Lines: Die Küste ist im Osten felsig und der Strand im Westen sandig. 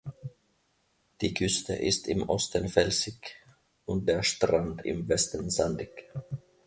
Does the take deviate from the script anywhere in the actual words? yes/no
no